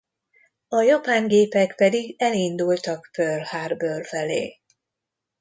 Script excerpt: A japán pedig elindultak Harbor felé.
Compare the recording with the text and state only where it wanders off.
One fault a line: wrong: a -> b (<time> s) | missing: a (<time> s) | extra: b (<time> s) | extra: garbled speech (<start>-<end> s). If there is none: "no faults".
extra: gépek (1.3 s)
extra: Pearl (3.1 s)